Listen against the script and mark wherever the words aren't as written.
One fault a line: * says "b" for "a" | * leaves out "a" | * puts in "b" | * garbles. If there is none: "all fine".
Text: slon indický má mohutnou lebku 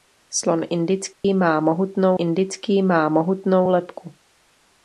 * puts in "indický má mohutnou"